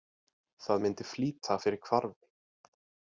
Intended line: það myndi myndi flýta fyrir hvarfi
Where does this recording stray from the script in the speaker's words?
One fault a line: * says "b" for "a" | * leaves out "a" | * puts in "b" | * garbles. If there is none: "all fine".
* leaves out "myndi"